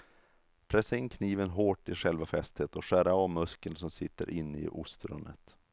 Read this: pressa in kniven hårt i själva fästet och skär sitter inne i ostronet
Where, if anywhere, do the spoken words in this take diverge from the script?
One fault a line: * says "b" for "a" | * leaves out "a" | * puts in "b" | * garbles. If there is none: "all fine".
* puts in "av muskeln som"